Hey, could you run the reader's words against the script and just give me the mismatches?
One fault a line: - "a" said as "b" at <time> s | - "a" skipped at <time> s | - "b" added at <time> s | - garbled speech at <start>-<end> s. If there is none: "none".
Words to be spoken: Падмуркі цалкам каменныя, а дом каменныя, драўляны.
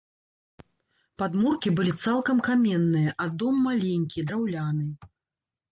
- "былі" added at 1.8 s
- "каменныя" said as "маленькі" at 3.7 s